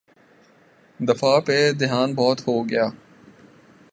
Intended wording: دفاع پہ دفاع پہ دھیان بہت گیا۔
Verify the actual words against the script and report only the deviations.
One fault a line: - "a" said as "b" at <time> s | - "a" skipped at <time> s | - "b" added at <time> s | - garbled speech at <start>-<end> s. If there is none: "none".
- "دفاع پہ" skipped at 1.7 s
- "ہو" added at 2.5 s